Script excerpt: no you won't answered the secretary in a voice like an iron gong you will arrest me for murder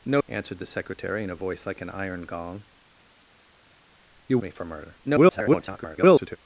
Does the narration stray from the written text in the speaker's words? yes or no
yes